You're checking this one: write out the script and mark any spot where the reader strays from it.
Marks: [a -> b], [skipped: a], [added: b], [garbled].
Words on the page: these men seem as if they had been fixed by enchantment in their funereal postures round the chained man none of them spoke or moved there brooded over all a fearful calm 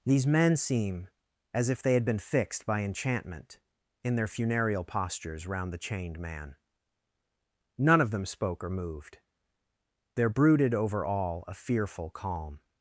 these men seem as if they had been fixed by enchantment in their funereal postures round the chained man none of them spoke or moved there brooded over all a fearful calm